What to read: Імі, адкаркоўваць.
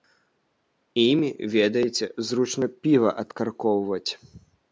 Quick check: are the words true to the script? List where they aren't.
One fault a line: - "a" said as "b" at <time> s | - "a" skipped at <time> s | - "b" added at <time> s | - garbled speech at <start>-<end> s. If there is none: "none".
- "ведаеце зручна піва" added at 1.6 s